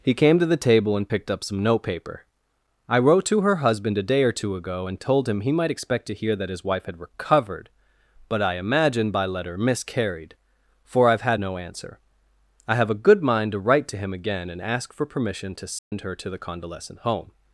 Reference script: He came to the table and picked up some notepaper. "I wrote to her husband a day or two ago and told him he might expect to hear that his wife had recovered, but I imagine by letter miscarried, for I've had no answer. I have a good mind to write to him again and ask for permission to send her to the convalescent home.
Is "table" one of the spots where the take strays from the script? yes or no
no